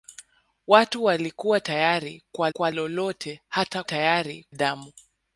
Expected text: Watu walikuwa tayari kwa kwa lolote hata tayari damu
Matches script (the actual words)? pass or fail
pass